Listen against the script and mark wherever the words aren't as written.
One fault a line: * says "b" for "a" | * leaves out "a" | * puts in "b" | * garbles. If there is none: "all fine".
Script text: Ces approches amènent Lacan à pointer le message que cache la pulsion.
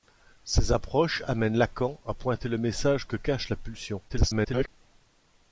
* garbles